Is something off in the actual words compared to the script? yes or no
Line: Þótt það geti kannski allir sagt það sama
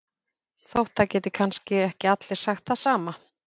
yes